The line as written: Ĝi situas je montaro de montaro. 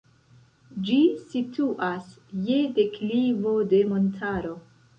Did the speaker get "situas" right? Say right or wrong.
right